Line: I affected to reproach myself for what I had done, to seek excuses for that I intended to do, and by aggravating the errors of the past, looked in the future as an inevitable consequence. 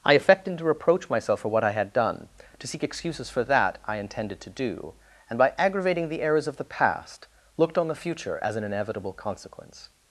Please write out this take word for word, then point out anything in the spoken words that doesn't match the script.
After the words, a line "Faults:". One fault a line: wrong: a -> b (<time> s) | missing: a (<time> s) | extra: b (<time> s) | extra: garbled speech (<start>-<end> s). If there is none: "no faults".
I affected to reproach myself for what I had done, to seek excuses for that I intended to do, and by aggravating the errors of the past, looked on the future as an inevitable consequence.
Faults:
wrong: in -> on (7.8 s)